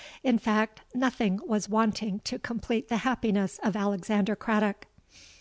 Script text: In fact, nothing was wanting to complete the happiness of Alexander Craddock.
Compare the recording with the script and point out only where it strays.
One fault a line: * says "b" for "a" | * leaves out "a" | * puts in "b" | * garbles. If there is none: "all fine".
all fine